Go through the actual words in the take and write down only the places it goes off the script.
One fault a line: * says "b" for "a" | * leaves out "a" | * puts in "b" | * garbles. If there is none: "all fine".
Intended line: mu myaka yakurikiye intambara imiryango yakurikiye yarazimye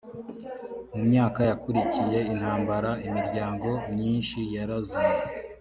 * says "myinshi" for "yakurikiye"